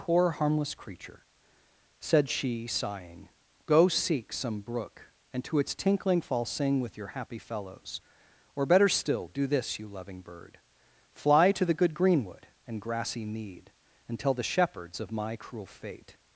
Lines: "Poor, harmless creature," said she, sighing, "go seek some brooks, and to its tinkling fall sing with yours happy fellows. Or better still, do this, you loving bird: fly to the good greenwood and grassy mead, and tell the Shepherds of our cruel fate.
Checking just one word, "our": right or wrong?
wrong